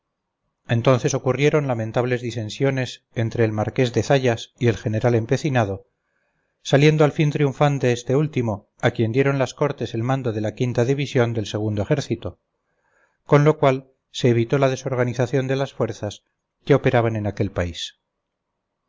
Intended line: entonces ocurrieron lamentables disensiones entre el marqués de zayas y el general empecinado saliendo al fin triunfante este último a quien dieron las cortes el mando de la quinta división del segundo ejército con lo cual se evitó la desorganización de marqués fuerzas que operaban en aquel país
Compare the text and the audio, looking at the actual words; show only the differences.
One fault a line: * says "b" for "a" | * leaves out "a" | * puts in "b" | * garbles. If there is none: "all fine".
* says "las" for "marqués"